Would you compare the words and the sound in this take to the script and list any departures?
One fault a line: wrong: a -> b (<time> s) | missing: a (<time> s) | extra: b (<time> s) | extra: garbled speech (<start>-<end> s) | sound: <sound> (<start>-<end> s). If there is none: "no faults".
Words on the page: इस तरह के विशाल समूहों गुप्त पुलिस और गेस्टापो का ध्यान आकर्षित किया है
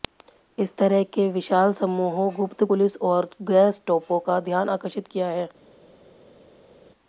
no faults